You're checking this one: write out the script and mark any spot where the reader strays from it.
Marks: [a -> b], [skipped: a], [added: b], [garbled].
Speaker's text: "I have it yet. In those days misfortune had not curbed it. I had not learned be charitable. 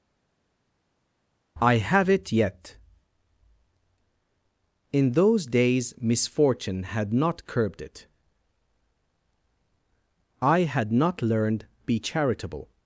"I have it yet. In those days misfortune had not curbed it. I had not learned be charitable.